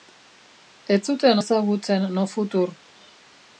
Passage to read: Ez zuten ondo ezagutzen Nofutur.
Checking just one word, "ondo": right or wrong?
wrong